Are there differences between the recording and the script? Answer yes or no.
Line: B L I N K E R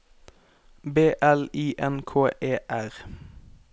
no